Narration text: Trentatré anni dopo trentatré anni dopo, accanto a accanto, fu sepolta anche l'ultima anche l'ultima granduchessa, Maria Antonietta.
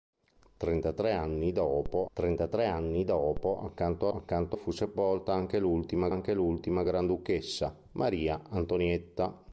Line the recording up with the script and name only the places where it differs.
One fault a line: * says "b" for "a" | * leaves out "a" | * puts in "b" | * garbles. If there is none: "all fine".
all fine